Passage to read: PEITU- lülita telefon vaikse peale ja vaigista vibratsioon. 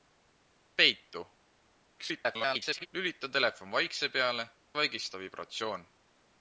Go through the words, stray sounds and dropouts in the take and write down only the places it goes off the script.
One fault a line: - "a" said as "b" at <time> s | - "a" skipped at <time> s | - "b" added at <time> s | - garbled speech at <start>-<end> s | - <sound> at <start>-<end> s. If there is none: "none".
- garbled speech at 2.0-2.9 s
- "ja" skipped at 4.5 s